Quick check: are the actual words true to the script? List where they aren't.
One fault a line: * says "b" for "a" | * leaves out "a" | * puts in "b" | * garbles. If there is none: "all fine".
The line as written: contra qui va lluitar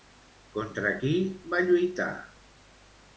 all fine